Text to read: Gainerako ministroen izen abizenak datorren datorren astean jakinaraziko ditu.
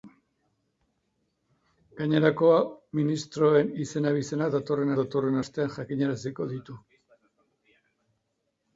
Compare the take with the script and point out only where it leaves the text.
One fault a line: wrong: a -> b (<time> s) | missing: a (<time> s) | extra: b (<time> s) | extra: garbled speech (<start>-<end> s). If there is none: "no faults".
no faults